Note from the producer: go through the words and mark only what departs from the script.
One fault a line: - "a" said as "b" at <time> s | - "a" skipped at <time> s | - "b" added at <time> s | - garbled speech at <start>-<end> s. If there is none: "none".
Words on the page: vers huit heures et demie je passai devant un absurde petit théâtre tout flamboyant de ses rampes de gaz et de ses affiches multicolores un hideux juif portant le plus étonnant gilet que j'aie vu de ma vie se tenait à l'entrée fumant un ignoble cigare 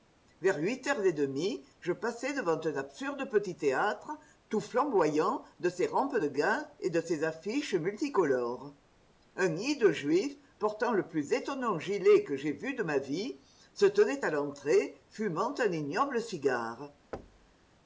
none